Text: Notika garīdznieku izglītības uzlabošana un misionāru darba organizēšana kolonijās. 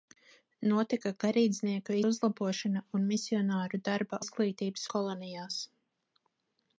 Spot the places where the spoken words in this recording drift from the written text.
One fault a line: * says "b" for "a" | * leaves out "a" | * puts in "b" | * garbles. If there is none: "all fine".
* leaves out "izglītības"
* says "izglītības" for "organizēšana"